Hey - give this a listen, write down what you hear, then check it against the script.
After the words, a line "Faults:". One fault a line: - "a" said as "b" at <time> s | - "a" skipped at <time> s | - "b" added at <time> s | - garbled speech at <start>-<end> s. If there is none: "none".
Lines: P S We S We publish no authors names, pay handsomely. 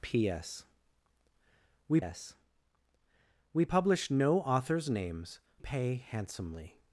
P S We S We publish no authors names, pay handsomely.
Faults:
none